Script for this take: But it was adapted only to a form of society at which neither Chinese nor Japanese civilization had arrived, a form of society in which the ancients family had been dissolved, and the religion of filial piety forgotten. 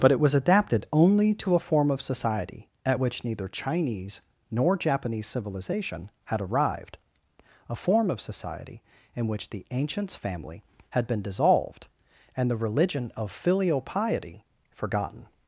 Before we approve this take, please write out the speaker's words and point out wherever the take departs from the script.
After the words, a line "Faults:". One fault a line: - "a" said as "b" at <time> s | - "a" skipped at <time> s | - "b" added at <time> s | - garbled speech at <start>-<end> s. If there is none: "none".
But it was adapted only to a form of society at which neither Chinese nor Japanese civilization had arrived, a form of society in which the ancients family had been dissolved, and the religion of filial piety forgotten.
Faults:
none